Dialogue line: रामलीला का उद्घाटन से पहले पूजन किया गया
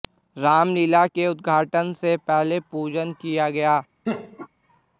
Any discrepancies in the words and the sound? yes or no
yes